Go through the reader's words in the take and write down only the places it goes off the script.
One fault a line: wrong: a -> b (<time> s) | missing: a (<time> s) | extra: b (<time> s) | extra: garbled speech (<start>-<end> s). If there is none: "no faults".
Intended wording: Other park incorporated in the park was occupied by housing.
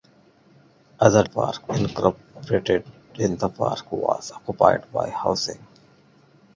no faults